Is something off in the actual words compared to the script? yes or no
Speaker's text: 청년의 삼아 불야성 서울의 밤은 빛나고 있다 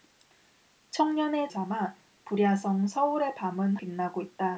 no